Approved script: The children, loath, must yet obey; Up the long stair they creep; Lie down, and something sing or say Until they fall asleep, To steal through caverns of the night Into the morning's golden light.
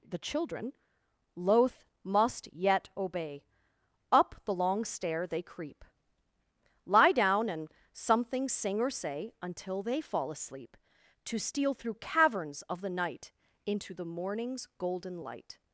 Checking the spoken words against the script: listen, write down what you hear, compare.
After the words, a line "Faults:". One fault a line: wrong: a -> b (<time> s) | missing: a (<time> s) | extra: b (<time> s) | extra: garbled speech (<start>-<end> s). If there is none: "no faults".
The children, loath, must yet obey; Up the long stair they creep; Lie down, and something sing or say Until they fall asleep, To steal through caverns of the night Into the morning's golden light.
Faults:
no faults